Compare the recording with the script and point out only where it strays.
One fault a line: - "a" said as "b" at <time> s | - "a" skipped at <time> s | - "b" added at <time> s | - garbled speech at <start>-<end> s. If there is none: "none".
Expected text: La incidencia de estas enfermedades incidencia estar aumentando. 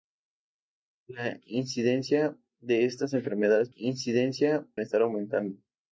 none